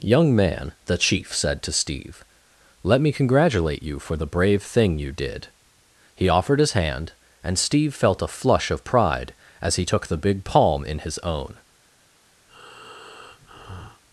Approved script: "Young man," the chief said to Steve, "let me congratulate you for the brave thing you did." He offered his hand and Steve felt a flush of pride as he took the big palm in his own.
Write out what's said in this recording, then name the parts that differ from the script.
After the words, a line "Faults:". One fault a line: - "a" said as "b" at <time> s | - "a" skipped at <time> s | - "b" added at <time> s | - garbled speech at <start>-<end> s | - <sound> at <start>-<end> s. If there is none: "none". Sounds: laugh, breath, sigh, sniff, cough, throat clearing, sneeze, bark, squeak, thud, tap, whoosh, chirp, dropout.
"Young man," the chief said to Steve, "let me congratulate you for the brave thing you did." He offered his hand and Steve felt a flush of pride as he took the big palm in his own.
Faults:
- breath at 12.5-14.0 s